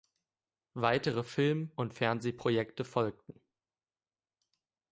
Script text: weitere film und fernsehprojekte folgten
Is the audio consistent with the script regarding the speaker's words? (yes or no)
yes